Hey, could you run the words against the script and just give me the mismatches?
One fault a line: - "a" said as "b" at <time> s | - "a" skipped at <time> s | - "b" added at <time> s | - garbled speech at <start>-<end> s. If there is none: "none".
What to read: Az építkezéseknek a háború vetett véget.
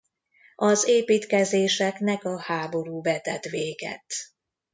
none